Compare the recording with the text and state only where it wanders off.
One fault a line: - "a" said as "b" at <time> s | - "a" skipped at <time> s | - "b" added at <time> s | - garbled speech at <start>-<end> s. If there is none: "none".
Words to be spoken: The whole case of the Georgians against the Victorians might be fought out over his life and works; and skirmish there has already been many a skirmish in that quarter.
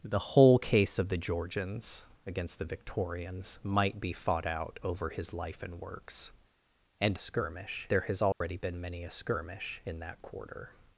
none